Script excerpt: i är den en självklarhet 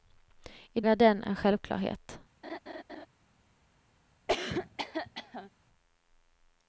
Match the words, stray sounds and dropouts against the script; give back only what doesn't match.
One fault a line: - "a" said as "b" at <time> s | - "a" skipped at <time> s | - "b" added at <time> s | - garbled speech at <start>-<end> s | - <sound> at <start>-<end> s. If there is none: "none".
- laugh at 2.4-3.1 s
- cough at 4.3-5.5 s